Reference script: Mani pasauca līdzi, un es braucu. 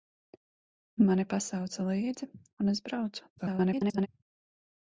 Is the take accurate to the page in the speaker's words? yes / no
no